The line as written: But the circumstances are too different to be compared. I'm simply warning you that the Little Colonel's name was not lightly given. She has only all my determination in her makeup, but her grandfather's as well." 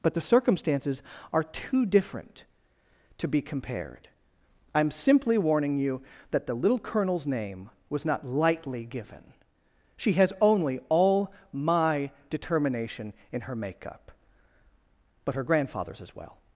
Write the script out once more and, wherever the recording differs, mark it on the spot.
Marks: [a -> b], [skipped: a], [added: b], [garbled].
But the circumstances are too different to be compared. I'm simply warning you that the Little Colonel's name was not lightly given. She has only all my determination in her makeup, but her grandfather's as well."